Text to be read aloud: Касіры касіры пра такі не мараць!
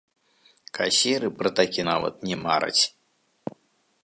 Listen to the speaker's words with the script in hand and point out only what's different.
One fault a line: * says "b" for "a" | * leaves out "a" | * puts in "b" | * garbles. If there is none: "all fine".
* leaves out "касіры"
* puts in "нават"